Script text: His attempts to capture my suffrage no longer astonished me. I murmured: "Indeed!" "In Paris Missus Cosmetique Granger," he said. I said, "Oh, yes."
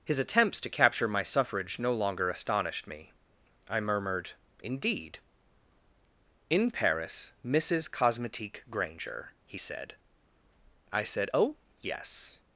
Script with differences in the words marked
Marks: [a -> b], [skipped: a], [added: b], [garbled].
His attempts to capture my suffrage no longer astonished me. I murmured: "Indeed!" "In Paris Missus Cosmetique Granger," he said. I said, "Oh, yes."